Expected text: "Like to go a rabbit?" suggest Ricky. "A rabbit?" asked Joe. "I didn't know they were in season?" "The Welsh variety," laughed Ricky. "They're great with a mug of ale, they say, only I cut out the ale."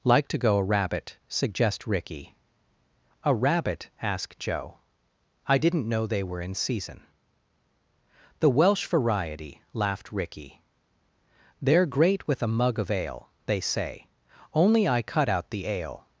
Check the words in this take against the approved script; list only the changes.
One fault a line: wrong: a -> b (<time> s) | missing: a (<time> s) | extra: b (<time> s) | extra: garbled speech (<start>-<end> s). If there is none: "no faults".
no faults